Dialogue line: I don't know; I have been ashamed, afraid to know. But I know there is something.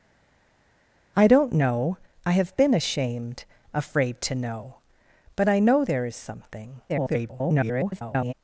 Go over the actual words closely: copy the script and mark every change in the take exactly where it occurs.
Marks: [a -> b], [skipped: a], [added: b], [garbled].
I don't know; I have been ashamed, afraid to know. But I know there is something. [garbled]